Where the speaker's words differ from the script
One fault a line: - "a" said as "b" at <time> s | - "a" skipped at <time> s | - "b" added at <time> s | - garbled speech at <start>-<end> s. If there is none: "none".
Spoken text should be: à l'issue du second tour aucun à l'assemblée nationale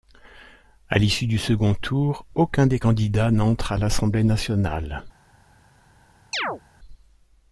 - "des candidats n'entre" added at 2.6 s